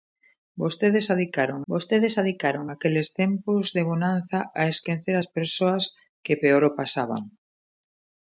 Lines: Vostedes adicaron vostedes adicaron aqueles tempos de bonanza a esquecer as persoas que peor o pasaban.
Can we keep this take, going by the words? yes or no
yes